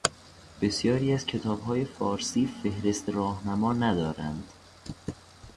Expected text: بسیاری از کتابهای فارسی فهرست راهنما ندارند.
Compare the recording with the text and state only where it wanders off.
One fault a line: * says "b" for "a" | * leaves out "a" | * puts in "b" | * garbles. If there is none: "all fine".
all fine